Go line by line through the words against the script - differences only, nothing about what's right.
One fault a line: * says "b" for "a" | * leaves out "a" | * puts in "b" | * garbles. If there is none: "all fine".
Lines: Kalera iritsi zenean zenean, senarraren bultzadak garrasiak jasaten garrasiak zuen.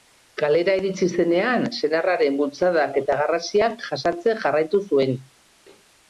* leaves out "zenean"
* puts in "eta"
* says "jarraitu" for "garrasiak"